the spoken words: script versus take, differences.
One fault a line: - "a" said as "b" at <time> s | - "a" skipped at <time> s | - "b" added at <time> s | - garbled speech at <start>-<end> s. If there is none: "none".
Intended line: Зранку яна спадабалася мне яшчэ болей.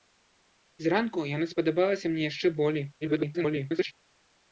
- garbled speech at 3.0-3.9 s